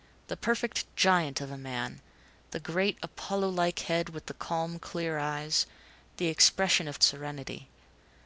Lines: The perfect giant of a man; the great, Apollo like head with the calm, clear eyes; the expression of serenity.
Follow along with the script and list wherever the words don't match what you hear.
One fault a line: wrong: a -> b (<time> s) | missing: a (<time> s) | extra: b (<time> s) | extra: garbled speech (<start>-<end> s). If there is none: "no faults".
no faults